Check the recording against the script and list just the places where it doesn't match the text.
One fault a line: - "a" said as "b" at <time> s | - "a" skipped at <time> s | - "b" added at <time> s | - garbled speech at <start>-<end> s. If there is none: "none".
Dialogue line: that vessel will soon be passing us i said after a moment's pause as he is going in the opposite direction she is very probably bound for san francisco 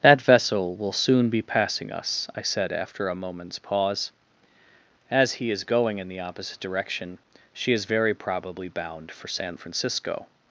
none